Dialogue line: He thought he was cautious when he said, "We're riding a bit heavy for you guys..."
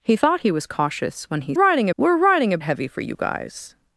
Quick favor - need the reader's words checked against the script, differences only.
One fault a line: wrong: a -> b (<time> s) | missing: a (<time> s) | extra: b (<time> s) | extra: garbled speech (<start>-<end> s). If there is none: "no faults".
wrong: said -> riding (1.5 s)
missing: bit (2.6 s)